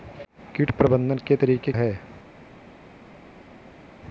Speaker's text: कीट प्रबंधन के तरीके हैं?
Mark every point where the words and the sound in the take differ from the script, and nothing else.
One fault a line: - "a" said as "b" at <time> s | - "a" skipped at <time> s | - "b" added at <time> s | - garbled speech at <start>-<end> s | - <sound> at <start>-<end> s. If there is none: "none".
none